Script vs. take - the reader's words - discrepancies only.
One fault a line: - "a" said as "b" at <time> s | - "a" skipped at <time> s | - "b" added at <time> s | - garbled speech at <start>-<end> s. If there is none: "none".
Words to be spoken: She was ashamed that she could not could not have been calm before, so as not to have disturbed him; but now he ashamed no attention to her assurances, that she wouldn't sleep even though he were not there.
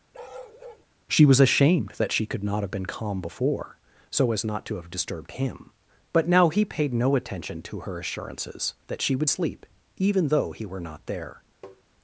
- "could not" skipped at 2.6 s
- "ashamed" said as "paid" at 6.6 s
- "wouldn't" said as "would" at 9.1 s